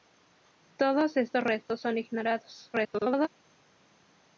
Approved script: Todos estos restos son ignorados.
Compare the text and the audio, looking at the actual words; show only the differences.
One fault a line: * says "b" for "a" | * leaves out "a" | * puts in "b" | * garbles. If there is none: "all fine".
* garbles